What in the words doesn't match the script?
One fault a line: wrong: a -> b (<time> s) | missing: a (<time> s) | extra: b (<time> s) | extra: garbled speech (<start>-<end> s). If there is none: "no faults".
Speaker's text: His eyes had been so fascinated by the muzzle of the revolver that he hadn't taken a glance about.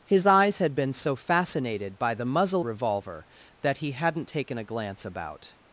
missing: of the (2.6 s)